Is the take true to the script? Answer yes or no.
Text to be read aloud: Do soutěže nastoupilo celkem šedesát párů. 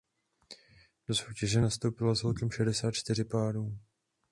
no